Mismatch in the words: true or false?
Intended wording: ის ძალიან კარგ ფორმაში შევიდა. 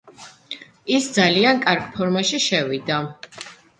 false